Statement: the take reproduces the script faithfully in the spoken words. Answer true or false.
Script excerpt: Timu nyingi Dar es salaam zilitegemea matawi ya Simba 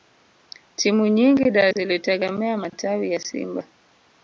false